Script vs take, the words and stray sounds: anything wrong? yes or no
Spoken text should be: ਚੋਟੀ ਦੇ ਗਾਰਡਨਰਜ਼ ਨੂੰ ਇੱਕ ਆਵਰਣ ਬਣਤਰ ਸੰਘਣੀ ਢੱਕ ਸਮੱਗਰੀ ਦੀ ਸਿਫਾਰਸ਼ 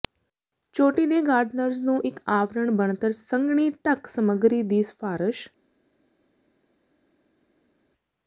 no